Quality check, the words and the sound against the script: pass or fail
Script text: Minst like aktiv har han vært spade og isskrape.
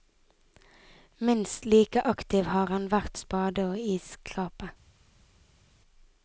pass